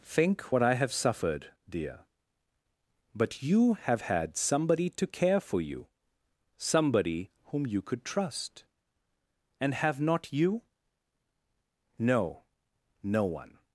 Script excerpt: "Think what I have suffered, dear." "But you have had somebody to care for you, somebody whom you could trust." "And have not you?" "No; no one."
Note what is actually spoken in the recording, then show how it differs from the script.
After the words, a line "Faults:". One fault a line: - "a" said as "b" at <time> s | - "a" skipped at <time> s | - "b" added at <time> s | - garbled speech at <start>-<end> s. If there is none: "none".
"Think what I have suffered, dear." "But you have had somebody to care for you, somebody whom you could trust." "And have not you?" "No; no one."
Faults:
none